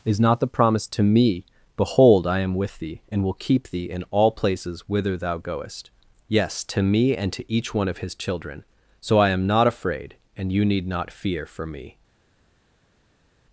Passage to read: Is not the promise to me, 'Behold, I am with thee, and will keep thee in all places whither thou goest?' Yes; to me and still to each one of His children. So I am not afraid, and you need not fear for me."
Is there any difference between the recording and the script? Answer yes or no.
yes